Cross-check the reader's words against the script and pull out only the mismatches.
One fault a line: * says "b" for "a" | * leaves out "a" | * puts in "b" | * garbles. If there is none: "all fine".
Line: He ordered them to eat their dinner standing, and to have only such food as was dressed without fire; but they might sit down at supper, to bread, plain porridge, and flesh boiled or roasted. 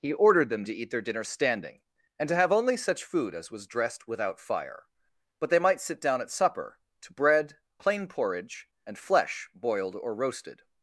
all fine